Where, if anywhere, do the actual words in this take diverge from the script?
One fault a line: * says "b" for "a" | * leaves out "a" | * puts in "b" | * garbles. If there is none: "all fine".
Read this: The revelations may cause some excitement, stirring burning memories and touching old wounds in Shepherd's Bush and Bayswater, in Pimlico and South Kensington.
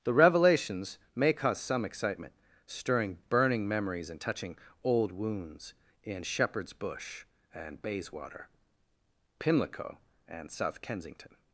* leaves out "in"